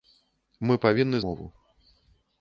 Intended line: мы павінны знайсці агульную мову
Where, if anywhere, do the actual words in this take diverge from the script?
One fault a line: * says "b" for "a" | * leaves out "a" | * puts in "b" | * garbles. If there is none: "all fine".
* leaves out "знайсці агульную"